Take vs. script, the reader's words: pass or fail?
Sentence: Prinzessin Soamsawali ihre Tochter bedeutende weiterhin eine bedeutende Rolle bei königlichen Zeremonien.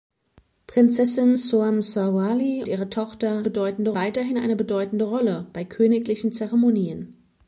pass